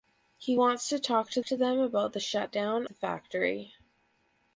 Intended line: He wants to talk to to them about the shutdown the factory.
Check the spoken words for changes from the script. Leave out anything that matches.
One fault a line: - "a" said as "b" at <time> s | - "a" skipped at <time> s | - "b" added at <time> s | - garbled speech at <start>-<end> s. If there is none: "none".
none